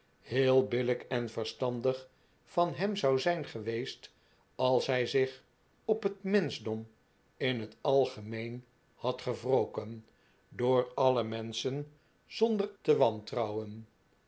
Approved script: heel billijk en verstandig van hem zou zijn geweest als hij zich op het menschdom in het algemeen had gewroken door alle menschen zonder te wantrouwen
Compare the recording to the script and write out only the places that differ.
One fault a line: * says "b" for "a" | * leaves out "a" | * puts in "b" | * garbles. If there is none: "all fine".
all fine